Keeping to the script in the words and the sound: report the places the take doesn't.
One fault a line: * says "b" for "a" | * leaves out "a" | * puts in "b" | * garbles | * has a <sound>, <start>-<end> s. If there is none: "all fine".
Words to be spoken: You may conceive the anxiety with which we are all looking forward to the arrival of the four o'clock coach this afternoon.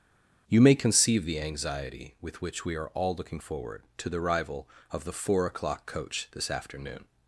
all fine